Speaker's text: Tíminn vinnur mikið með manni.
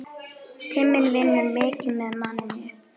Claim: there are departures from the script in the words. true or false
false